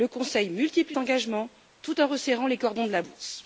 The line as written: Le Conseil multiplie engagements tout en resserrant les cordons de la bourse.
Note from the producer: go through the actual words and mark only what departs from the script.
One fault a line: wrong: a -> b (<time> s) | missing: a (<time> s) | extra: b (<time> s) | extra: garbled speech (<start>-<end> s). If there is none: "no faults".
no faults